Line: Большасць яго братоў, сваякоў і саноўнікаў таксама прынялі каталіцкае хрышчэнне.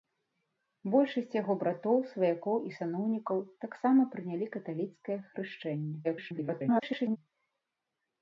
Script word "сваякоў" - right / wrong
right